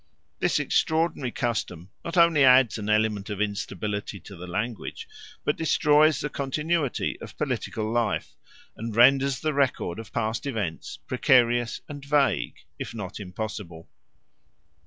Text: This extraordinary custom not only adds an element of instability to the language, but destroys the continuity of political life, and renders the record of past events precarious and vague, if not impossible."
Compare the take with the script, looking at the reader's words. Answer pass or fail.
pass